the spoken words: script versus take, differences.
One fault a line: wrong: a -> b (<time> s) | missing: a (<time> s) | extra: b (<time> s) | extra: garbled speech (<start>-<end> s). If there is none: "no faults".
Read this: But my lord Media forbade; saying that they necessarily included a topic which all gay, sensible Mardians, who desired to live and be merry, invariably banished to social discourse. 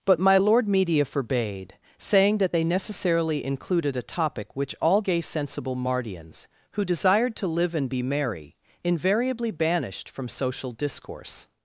wrong: to -> from (10.1 s)